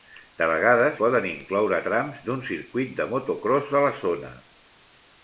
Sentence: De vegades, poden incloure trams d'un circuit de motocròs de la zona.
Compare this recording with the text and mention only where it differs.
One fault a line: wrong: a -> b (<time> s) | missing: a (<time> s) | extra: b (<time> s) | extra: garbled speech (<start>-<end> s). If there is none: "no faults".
no faults